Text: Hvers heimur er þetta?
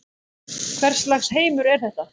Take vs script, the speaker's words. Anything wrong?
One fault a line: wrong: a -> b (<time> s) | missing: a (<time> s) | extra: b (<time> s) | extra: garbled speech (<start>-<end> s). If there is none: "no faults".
extra: lags (1.1 s)